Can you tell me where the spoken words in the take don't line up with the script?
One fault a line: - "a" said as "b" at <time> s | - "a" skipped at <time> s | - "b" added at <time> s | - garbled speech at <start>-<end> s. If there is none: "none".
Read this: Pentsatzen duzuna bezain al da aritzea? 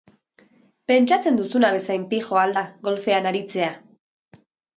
- "pijoa" added at 2.1 s
- "golfean" added at 2.9 s